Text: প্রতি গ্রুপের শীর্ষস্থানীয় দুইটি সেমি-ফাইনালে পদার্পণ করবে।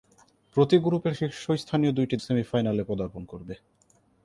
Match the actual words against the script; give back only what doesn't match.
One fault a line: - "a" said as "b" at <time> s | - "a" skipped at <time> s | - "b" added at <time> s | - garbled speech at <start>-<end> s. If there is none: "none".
none